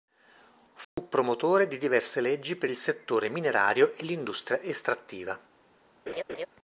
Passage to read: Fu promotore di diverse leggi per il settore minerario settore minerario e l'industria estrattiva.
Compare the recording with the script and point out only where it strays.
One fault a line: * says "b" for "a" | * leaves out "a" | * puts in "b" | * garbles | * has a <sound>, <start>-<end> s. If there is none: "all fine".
* has a dropout, 0.8-1.0 s
* leaves out "settore minerario"
* has a laugh, 6.1-6.5 s